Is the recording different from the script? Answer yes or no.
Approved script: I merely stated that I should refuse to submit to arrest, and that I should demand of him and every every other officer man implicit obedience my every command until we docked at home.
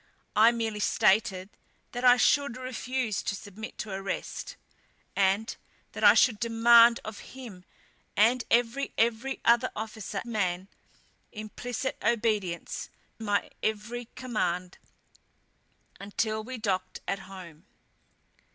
no